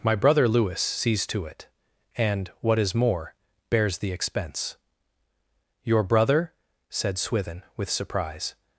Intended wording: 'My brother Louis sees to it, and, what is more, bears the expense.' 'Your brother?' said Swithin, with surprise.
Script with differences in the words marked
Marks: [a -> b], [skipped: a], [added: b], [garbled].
'My brother Louis sees to it, and, what is more, bears the expense.' 'Your brother?' said Swithin, with surprise.